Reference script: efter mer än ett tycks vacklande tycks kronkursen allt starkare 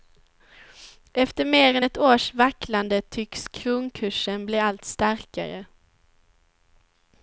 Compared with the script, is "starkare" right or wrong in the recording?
right